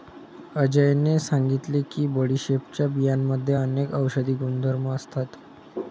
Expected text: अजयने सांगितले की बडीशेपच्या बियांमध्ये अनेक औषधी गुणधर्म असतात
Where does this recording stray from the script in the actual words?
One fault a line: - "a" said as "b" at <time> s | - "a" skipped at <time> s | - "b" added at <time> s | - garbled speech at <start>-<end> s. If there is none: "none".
none